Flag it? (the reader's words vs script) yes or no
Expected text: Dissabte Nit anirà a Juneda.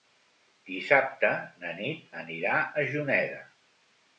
yes